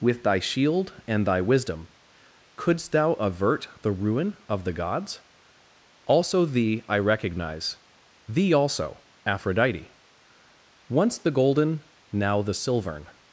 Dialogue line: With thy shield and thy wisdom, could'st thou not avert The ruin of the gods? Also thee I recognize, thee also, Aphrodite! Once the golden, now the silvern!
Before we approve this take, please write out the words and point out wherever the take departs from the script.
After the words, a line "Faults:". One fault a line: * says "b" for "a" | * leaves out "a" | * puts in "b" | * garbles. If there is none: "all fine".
With thy shield and thy wisdom, could'st thou avert The ruin of the gods? Also thee I recognize, thee also, Aphrodite! Once the golden, now the silvern!
Faults:
* leaves out "not"